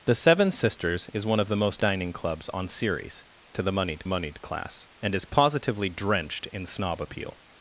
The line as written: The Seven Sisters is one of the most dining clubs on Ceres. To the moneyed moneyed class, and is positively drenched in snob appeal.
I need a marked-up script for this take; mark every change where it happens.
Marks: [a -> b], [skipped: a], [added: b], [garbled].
The Seven Sisters is one of the most dining clubs on Ceres. To the moneyed moneyed class, and is positively drenched in snob appeal.